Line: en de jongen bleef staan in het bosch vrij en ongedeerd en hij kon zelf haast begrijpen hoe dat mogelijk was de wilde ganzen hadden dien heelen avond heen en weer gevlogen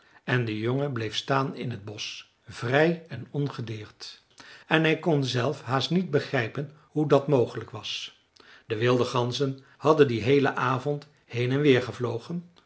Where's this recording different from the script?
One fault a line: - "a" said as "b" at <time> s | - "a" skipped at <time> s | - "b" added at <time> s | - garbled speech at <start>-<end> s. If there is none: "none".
- "niet" added at 5.9 s